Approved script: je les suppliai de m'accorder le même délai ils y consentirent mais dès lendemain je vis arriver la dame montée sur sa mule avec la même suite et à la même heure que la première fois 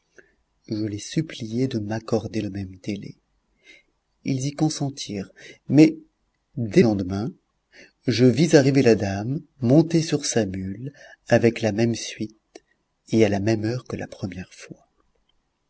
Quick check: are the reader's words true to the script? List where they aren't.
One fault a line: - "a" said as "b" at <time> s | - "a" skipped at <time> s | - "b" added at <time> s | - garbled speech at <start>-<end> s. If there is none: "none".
none